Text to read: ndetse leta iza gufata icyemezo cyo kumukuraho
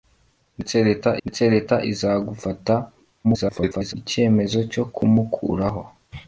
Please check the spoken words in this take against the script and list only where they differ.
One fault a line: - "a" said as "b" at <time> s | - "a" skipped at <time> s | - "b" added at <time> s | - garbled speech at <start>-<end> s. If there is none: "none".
- "ndetse leta" added at 1.2 s
- garbled speech at 3.2-3.9 s